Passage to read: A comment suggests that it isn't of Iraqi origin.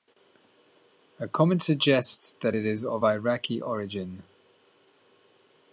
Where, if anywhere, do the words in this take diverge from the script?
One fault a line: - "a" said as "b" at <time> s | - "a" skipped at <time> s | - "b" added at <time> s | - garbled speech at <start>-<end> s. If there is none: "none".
- "isn't" said as "is" at 2.7 s